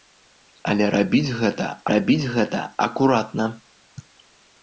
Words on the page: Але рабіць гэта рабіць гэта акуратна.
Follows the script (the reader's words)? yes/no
yes